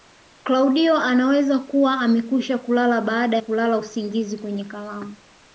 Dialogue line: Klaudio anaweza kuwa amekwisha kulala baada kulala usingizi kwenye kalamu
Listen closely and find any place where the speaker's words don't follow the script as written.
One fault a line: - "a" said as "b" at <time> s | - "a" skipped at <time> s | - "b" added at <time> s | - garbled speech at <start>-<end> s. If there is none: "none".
none